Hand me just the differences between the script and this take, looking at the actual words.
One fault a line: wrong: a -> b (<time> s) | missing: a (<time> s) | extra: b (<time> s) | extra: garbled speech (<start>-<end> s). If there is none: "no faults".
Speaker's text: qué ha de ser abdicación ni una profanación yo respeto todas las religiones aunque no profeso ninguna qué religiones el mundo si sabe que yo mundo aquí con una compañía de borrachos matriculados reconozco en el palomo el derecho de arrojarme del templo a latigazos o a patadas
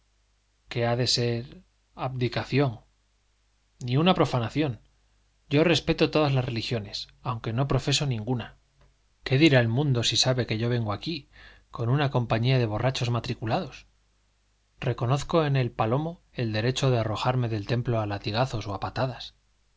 wrong: religiones -> dirá (9.4 s)
wrong: mundo -> vengo (10.7 s)